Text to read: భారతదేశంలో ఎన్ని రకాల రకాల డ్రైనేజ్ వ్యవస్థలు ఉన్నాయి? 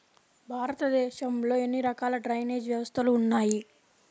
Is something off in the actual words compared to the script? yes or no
yes